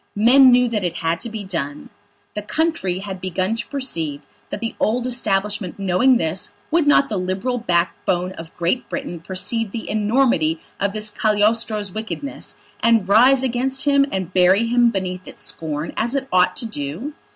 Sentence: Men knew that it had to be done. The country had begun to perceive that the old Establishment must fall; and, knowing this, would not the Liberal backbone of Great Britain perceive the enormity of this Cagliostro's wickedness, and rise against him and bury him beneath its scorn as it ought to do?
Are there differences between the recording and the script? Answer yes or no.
yes